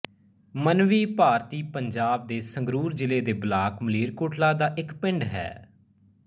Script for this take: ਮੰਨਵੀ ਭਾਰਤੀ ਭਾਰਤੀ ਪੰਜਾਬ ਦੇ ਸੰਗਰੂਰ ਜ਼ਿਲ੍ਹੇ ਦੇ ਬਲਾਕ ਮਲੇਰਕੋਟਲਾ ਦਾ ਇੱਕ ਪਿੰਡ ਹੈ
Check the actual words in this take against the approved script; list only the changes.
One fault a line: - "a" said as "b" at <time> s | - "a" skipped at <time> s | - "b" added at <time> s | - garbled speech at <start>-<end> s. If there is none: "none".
- "ਭਾਰਤੀ" skipped at 1.6 s